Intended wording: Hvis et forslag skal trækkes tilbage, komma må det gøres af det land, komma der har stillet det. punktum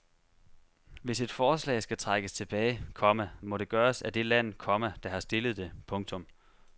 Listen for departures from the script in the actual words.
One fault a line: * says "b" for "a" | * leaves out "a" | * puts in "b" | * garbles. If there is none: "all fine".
all fine